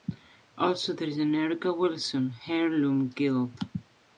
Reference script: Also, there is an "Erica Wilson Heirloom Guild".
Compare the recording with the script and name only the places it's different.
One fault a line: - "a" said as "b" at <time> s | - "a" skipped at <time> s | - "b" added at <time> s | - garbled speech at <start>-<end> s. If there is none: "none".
none